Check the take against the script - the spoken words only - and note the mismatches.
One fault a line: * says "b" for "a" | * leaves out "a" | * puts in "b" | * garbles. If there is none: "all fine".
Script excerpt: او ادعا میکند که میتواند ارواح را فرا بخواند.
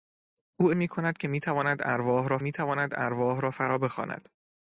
* leaves out "ادعا"
* puts in "میتواند ارواح را"